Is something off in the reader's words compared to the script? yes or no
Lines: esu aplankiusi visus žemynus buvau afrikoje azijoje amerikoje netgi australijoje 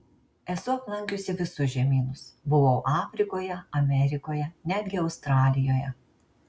yes